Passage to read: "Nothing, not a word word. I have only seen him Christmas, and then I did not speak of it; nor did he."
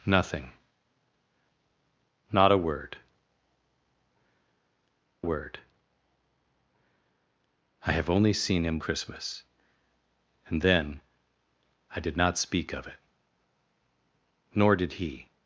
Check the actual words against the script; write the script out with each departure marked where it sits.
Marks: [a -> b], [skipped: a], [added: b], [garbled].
"Nothing, not a word word. I have only seen him Christmas, and then I did not speak of it; nor did he."